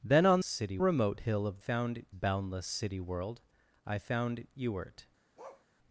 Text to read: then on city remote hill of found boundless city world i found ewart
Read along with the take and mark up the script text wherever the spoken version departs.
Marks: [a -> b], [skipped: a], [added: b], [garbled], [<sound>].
then on city remote hill of found boundless city world i found ewart [bark]